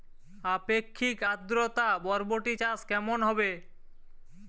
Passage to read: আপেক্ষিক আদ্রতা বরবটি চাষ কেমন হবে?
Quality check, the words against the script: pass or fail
pass